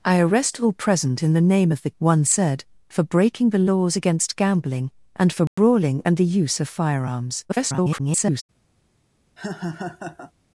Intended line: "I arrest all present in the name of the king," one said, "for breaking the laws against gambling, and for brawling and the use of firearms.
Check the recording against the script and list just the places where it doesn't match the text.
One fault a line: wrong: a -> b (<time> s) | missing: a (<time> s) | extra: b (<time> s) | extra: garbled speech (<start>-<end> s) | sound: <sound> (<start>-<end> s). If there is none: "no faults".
missing: king (1.9 s)
sound: dropout (5.5-5.6 s)
extra: garbled speech (7.5-8.4 s)
sound: laugh (9.4-10.3 s)